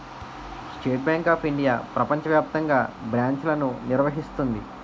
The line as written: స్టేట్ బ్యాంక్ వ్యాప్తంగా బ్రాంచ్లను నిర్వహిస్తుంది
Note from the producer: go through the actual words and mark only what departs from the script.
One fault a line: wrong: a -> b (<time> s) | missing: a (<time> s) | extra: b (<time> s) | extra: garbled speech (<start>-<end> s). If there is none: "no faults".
extra: ఆఫ్ ఇండియా ప్రపంచ (1.3 s)